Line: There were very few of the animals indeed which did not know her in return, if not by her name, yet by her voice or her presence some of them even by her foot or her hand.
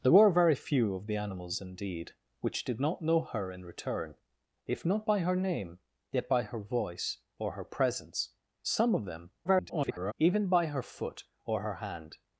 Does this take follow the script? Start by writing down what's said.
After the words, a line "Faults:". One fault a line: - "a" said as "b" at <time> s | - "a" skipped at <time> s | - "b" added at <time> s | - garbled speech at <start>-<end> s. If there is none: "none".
There were very few of the animals indeed which did not know her in return, if not by her name, yet by her voice or her presence some of them [garbled] even by her foot or her hand.
Faults:
- garbled speech at 9.4-10.1 s